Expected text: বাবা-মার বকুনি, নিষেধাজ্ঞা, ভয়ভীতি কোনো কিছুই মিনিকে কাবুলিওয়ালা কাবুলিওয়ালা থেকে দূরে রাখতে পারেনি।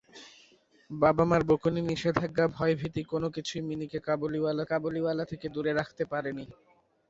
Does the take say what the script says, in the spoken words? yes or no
yes